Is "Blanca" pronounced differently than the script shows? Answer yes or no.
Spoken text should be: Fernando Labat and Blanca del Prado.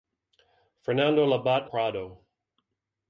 yes